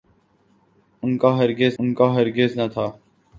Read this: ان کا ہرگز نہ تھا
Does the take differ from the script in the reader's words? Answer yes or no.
yes